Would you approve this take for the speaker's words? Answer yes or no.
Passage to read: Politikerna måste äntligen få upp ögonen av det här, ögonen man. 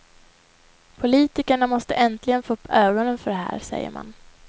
no